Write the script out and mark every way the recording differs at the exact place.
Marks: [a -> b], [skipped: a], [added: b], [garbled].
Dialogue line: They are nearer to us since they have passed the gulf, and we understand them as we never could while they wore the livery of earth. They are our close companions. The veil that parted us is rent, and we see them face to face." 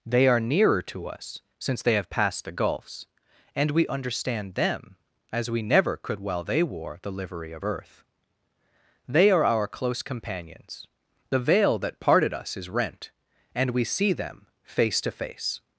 They are nearer to us since they have passed the [gulf, -> gulfs] and we understand them as we never could while they wore the livery of earth. They are our close companions. The veil that parted us is rent, and we see them face to face."